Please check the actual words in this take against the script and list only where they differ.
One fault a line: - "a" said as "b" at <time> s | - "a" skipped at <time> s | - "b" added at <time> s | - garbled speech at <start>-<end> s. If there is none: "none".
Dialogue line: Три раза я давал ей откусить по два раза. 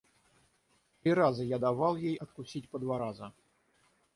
none